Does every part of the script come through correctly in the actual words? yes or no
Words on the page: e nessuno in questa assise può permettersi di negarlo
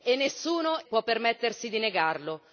no